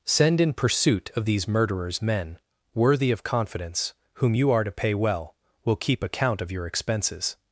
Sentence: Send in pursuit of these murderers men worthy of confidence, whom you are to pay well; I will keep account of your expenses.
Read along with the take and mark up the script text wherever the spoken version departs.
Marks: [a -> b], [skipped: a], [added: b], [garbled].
Send in pursuit of these murderers men worthy of confidence, whom you are to pay well; [skipped: I] will keep account of your expenses.